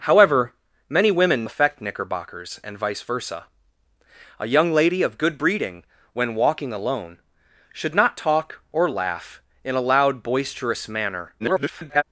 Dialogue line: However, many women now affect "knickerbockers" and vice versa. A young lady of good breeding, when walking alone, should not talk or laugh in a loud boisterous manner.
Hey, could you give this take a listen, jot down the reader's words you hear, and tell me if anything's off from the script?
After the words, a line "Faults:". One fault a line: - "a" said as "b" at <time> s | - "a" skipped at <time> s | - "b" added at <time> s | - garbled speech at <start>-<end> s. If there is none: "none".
However, many women affect "knickerbockers" and vice versa. A young lady of good breeding, when walking alone, should not talk or laugh in a loud boisterous manner. [garbled]
Faults:
- "now" skipped at 1.4 s
- garbled speech at 11.4-12.0 s